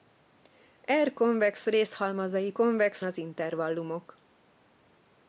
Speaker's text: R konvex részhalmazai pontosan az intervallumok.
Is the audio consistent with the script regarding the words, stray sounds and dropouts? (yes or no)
no